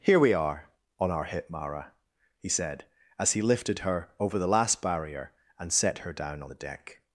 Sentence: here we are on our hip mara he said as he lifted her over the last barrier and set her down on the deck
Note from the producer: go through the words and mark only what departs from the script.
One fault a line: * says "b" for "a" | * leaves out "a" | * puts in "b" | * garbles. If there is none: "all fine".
all fine